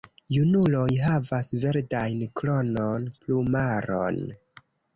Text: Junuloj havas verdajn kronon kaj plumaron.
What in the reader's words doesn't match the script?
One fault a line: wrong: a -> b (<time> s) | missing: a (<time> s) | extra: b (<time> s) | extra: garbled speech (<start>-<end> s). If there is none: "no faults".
missing: kaj (3.1 s)